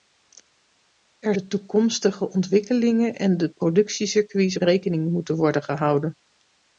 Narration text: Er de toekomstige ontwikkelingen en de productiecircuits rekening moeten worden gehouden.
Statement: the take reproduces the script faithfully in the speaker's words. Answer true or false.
true